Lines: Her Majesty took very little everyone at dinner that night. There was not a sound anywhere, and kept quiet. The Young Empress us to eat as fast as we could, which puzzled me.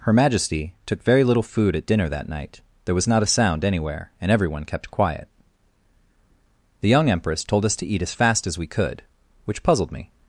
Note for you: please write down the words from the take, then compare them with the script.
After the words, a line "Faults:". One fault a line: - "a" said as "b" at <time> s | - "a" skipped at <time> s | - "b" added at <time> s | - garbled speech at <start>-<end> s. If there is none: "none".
Her Majesty took very little food at dinner that night. There was not a sound anywhere, and everyone kept quiet. The Young Empress told us to eat as fast as we could, which puzzled me.
Faults:
- "everyone" said as "food" at 1.4 s
- "everyone" added at 4.3 s
- "told" added at 7.4 s